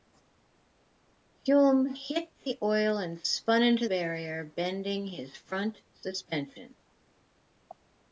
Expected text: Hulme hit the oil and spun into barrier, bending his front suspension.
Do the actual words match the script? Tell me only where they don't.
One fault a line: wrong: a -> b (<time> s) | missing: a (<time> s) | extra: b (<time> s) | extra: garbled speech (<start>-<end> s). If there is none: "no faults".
no faults